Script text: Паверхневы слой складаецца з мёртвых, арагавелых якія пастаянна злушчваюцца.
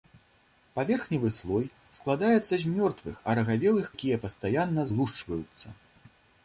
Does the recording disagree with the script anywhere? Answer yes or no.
no